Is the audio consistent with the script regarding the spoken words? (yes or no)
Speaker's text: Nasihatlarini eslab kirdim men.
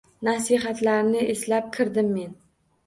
yes